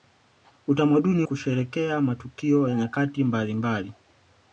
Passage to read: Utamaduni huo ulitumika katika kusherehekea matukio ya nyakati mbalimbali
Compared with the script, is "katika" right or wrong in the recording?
wrong